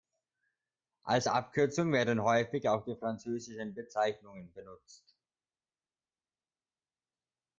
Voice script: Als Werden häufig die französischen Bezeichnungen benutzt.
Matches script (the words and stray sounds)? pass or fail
fail